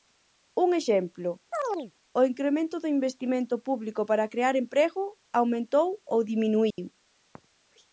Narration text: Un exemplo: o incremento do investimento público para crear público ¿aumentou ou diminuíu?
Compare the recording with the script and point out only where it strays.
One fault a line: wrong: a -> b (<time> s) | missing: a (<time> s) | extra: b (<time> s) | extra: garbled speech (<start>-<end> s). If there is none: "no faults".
wrong: público -> emprego (4.6 s)